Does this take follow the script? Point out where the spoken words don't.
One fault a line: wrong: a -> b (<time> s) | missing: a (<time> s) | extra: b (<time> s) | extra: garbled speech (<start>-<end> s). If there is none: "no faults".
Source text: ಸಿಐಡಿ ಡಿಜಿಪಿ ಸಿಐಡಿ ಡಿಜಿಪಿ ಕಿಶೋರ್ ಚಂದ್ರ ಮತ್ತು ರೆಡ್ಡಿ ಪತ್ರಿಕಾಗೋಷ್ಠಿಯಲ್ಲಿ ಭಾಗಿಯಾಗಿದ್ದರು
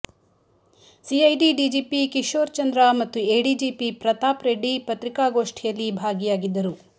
missing: ಸಿಐಡಿ ಡಿಜಿಪಿ (2.0 s)
extra: ಎಡಿಜಿಪಿ ಪ್ರತಾಪ್ (3.4 s)